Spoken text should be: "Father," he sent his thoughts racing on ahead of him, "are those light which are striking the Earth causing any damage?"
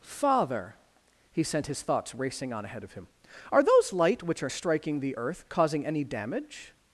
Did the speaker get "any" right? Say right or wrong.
right